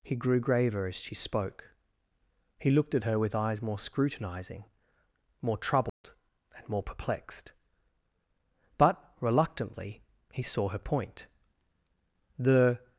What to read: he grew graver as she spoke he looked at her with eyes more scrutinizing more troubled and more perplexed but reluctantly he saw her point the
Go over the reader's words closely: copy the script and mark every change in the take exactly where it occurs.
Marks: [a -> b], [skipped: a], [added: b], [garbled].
he grew graver as she spoke he looked at her with eyes more scrutinizing more troubled and more perplexed but reluctantly he saw her point the